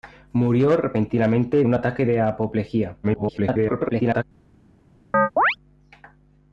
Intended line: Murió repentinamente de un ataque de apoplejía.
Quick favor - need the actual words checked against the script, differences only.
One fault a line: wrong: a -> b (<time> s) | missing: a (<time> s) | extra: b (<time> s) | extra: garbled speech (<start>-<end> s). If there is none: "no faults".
missing: de (1.6 s)
extra: garbled speech (3.0-4.2 s)